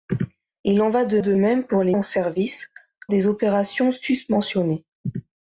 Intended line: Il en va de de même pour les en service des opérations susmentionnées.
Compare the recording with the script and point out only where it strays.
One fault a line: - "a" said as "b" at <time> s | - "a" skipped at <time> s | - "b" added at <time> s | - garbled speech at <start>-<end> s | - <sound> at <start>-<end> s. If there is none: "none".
none